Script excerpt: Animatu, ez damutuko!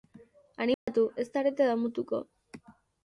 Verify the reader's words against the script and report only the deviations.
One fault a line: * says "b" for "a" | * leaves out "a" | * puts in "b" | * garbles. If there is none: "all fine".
* puts in "zarete"